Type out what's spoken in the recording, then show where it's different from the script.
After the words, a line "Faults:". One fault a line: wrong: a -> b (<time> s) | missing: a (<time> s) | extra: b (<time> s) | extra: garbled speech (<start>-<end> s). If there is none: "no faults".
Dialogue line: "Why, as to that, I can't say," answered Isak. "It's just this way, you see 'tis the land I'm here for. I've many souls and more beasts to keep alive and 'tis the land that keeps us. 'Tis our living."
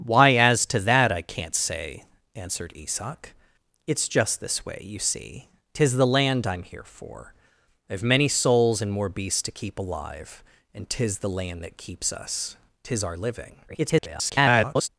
"Why, as to that, I can't say," answered Isak. "It's just this way, you see 'tis the land I'm here for. I've many souls and more beasts to keep alive and 'tis the land that keeps us. 'Tis our living." [garbled]
Faults:
extra: garbled speech (13.7-14.9 s)